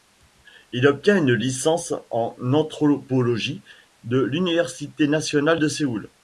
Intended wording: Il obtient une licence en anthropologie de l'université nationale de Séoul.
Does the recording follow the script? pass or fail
pass